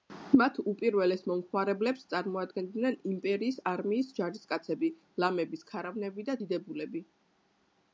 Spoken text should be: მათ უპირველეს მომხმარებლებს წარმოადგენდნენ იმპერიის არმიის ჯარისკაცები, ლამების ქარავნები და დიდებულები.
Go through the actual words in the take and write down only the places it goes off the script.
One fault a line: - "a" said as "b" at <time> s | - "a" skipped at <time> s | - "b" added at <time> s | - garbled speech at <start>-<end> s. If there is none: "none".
none